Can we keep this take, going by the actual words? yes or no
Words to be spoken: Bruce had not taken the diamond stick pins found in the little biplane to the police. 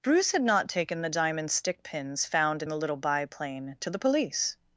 yes